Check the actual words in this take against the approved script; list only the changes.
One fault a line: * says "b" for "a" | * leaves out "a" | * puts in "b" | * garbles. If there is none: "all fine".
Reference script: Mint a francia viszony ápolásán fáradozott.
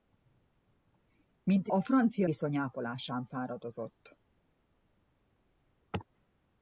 all fine